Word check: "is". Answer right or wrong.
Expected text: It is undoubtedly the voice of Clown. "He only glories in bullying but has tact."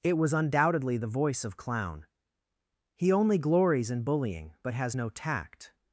wrong